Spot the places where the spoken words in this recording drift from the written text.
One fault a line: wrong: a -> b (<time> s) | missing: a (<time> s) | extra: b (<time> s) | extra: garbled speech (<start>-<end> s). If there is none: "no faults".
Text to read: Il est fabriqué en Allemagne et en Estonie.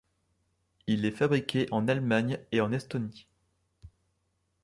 no faults